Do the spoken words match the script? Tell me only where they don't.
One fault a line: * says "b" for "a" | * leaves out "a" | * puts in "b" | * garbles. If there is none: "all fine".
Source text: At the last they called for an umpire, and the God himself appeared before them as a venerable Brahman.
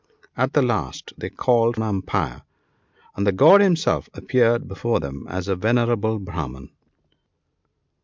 * leaves out "for"